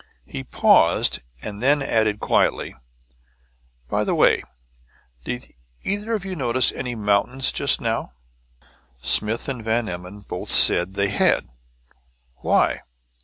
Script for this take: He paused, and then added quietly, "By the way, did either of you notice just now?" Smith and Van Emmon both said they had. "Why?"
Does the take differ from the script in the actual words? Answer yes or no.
yes